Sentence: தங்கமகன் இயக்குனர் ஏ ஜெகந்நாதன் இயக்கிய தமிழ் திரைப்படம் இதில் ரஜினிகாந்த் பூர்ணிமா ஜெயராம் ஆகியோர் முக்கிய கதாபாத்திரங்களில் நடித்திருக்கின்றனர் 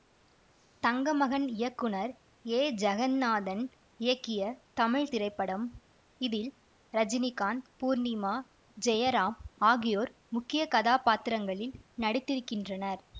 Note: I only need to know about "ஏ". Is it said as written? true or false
true